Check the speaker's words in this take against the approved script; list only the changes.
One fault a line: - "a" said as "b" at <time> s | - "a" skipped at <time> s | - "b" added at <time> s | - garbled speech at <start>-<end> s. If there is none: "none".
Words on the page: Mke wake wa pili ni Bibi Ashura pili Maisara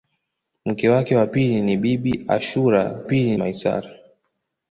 none